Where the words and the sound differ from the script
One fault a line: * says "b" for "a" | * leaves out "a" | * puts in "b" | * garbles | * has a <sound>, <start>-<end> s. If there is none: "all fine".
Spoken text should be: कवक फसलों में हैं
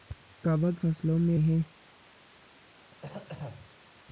* has a throat clearing, 2.7-3.8 s